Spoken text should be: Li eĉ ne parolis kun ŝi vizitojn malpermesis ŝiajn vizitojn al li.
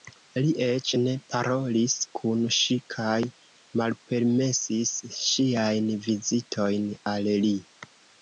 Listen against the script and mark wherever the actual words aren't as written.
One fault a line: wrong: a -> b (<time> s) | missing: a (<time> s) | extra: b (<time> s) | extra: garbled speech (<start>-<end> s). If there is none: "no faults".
wrong: vizitojn -> kaj (3.0 s)